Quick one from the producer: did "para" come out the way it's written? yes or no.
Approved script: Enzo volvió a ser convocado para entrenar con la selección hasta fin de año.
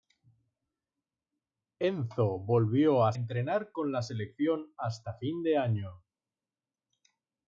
no